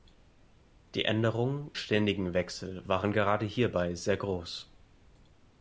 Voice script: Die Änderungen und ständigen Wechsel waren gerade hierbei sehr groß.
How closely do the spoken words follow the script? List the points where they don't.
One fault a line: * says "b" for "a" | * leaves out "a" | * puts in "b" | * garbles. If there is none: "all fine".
* leaves out "und"